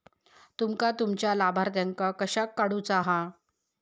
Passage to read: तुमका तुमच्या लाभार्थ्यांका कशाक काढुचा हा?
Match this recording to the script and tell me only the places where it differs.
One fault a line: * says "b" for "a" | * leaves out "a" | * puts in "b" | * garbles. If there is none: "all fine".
all fine